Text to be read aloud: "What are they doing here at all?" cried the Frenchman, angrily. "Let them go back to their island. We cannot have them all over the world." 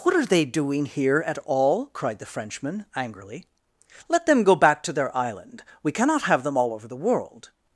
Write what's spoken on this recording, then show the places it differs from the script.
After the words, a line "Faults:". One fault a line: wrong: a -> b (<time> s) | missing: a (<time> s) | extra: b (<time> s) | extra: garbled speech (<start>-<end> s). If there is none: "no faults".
"What are they doing here at all?" cried the Frenchman, angrily. "Let them go back to their island. We cannot have them all over the world."
Faults:
no faults